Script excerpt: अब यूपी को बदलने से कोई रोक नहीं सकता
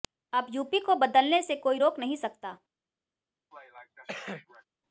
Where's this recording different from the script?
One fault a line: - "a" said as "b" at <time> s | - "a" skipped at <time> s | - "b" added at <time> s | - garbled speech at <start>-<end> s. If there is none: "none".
none